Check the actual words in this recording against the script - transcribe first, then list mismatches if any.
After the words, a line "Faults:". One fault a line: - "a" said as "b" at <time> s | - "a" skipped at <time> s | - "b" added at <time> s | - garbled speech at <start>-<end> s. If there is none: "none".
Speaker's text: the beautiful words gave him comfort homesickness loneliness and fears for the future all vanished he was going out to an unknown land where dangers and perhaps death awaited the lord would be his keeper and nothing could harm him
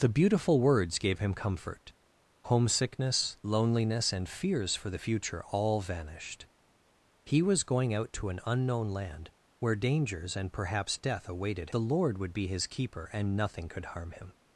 the beautiful words gave him comfort homesickness loneliness and fears for the future all vanished he was going out to an unknown land where dangers and perhaps death awaited the lord would be his keeper and nothing could harm him
Faults:
none